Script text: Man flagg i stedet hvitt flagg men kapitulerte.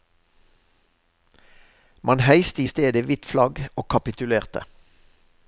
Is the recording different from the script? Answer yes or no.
yes